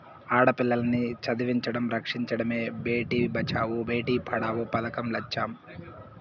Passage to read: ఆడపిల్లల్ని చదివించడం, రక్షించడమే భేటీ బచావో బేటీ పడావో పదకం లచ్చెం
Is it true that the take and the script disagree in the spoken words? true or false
false